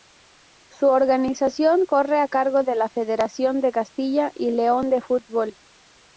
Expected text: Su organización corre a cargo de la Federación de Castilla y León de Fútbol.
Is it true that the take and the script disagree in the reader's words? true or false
false